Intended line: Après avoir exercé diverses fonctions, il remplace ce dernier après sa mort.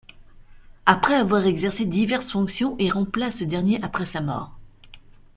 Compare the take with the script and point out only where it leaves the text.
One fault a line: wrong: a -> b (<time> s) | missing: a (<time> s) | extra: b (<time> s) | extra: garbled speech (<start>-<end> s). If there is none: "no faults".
no faults